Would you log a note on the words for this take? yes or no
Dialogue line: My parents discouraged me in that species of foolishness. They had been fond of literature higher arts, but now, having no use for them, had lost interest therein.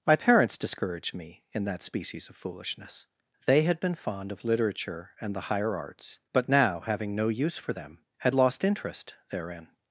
yes